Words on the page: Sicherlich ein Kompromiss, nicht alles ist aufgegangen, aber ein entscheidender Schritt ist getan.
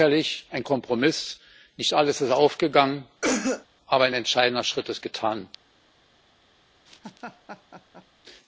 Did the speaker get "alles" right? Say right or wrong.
right